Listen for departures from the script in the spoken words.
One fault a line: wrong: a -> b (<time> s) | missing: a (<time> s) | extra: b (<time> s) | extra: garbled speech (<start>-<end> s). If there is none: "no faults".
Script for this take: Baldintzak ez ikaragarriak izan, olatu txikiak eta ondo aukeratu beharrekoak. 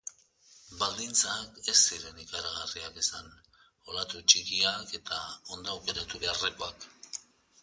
extra: ziren (1.8 s)